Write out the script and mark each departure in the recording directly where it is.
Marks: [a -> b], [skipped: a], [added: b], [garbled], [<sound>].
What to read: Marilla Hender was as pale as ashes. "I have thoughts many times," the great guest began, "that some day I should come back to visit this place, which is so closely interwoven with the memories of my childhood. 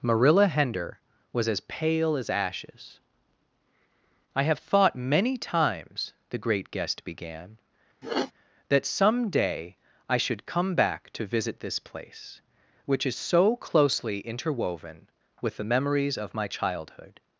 Marilla Hender was as pale as ashes. "I have [thoughts -> thought] many times," the great guest began, [sniff] "that some day I should come back to visit this place, which is so closely interwoven with the memories of my childhood.